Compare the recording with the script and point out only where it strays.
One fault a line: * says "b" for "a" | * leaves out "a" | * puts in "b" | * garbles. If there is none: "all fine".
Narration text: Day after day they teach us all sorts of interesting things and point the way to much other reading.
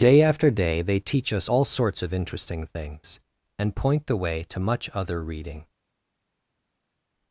all fine